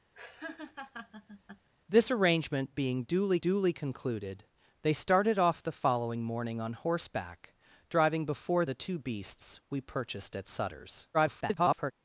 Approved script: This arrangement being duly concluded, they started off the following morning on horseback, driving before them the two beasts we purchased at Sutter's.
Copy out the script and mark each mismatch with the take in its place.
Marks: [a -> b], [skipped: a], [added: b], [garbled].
This arrangement being duly [added: duly] concluded, they started off the following morning on horseback, driving before [skipped: them] the two beasts we purchased at Sutter's. [garbled]